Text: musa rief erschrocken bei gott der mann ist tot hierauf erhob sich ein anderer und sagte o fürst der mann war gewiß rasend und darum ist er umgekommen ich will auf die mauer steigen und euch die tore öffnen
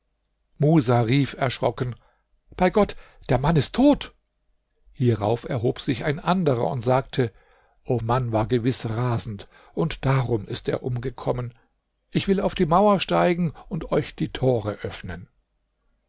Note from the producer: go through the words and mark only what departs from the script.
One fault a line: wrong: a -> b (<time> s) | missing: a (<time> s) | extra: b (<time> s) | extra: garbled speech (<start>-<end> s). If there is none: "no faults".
missing: fürst der (8.0 s)